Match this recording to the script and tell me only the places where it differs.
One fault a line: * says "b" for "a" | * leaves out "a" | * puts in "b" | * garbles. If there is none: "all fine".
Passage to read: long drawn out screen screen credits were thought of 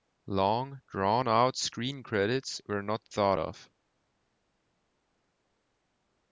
* leaves out "screen"
* puts in "not"